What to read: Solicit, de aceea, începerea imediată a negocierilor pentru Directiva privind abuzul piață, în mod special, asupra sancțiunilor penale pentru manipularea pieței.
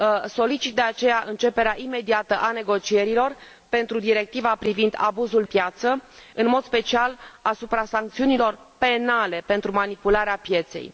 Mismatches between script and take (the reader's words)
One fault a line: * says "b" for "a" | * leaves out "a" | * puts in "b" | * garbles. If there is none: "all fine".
all fine